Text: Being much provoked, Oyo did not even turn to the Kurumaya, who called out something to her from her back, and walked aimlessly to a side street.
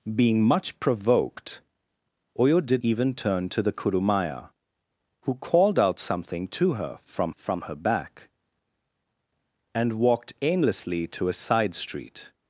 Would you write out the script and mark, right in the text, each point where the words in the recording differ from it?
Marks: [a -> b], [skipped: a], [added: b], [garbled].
Being much provoked, Oyo did [skipped: not] even turn to the Kurumaya, who called out something to her from [added: from] her back, and walked aimlessly to a side street.